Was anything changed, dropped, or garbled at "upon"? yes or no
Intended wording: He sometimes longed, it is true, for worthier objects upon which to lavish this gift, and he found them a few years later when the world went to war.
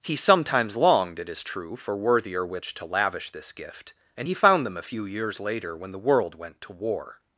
yes